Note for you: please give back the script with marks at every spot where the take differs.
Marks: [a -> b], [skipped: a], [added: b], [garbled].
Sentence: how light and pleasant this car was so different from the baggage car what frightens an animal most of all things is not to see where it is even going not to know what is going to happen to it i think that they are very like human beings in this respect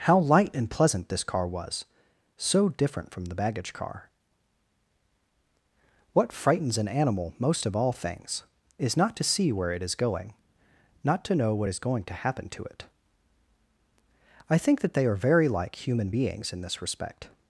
how light and pleasant this car was so different from the baggage car what frightens an animal most of all things is not to see where it is [skipped: even] going not to know what is going to happen to it i think that they are very like human beings in this respect